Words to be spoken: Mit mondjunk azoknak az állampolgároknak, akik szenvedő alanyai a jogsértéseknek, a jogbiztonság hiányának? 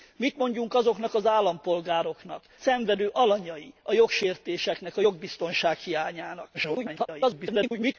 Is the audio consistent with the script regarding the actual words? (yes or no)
no